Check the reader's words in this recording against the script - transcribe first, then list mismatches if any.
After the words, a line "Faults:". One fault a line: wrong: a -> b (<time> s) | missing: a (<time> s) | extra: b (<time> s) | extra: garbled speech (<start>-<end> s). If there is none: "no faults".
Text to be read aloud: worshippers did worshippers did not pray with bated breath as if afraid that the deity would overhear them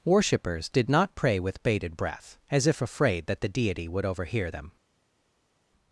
worshippers did not pray with bated breath as if afraid that the deity would overhear them
Faults:
missing: worshippers did (0.9 s)